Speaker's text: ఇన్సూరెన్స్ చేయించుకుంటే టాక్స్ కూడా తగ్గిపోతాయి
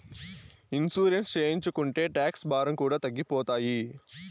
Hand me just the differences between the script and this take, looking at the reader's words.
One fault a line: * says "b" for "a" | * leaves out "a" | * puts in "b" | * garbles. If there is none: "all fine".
* puts in "భారం"